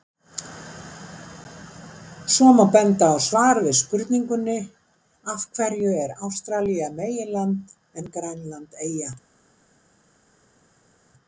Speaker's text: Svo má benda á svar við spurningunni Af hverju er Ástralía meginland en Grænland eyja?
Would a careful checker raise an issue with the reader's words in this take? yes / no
no